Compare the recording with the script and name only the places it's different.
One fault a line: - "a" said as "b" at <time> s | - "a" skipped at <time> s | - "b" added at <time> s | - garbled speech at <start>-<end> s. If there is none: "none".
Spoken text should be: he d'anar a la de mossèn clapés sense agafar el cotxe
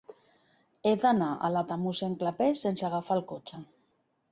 none